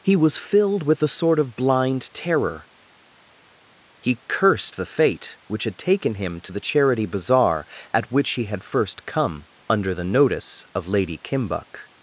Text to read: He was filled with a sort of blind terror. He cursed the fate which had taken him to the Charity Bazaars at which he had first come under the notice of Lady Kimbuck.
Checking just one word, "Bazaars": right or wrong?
wrong